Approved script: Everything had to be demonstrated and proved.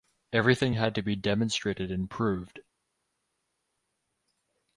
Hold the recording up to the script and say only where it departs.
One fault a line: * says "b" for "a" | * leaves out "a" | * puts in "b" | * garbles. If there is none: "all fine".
all fine